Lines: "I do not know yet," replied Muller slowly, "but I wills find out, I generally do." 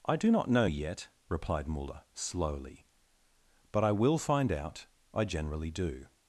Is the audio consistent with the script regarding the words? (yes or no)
no